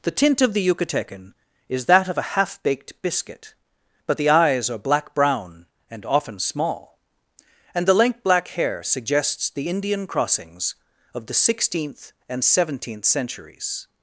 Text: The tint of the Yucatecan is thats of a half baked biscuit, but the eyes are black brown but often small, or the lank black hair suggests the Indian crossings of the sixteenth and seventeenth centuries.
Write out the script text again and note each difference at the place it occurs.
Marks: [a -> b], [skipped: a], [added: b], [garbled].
The tint of the Yucatecan is [thats -> that] of a half baked biscuit, but the eyes are black brown [but -> and] often small, [or -> and] the lank black hair suggests the Indian crossings of the sixteenth and seventeenth centuries.